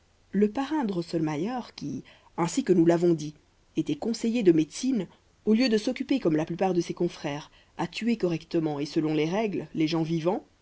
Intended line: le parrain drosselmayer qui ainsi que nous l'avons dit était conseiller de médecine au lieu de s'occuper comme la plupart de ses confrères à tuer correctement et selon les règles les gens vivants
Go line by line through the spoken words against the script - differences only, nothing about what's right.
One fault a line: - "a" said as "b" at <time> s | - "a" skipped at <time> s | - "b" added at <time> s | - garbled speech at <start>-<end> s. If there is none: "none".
none